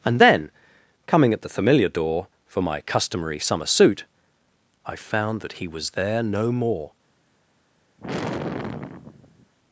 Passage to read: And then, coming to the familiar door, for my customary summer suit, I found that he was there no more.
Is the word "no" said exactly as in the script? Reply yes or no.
yes